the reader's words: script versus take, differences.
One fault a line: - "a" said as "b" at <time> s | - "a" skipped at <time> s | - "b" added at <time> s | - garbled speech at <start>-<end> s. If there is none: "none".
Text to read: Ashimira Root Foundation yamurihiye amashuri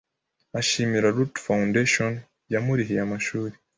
none